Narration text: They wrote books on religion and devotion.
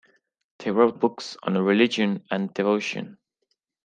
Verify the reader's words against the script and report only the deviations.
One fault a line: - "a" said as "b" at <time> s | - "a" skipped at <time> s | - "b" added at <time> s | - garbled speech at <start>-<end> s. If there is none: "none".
none